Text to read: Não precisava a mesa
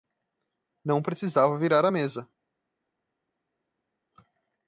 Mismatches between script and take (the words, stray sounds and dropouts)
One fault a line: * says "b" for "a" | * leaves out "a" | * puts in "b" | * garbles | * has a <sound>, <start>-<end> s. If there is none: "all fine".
* puts in "virar"